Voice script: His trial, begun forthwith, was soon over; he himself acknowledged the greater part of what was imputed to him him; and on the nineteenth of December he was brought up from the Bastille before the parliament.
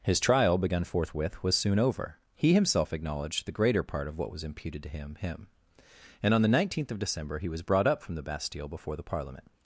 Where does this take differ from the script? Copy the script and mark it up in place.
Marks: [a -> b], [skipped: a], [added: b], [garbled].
His trial, begun forthwith, was soon over; he himself acknowledged the greater part of what was imputed to him him; and on the nineteenth of December he was brought up from the Bastille before the parliament.